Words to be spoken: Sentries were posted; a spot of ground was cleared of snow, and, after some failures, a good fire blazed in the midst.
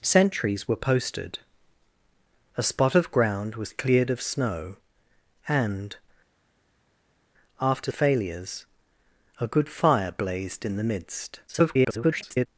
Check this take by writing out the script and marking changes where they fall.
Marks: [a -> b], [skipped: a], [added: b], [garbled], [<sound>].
Sentries were posted; a spot of ground was cleared of snow, and, after [skipped: some] failures, a good fire blazed in the midst. [garbled]